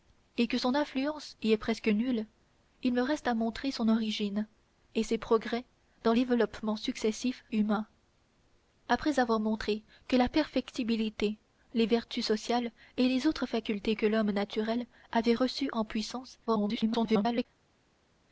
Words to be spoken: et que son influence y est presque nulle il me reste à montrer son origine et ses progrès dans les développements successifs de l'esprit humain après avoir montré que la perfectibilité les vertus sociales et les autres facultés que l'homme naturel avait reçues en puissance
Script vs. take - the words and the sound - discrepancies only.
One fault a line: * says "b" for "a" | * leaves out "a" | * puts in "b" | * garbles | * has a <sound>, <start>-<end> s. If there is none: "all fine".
* leaves out "les"
* leaves out "de l'esprit"
* garbles